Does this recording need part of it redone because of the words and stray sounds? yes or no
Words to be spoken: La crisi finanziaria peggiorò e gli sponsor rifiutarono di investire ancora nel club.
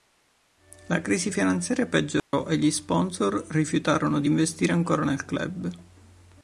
yes